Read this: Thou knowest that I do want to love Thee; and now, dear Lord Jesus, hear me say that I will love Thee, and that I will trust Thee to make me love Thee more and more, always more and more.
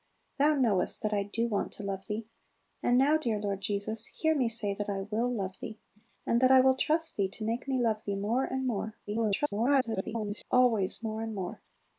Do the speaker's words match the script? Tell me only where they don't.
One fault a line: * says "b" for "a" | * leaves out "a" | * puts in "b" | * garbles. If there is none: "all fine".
* garbles